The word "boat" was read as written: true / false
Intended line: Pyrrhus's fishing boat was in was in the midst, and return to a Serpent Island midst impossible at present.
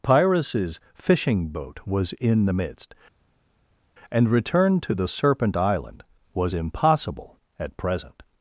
true